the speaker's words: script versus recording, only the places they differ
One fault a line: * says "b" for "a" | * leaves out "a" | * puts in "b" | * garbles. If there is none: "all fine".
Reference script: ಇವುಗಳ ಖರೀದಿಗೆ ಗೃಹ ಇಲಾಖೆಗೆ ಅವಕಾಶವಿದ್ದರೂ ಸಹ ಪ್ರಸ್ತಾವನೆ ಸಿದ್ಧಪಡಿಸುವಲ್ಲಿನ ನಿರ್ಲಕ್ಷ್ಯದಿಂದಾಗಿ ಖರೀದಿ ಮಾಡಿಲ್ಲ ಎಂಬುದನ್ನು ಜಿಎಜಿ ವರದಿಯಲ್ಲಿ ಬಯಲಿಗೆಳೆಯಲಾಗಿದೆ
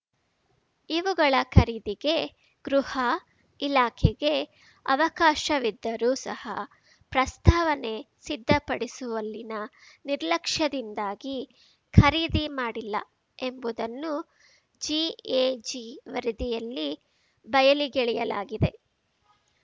all fine